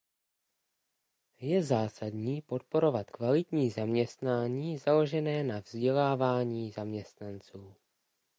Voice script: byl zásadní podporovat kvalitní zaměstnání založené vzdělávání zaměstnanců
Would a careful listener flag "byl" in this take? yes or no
yes